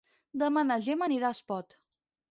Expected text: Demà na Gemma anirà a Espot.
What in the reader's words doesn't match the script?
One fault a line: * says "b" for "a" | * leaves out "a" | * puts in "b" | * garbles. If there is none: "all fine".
all fine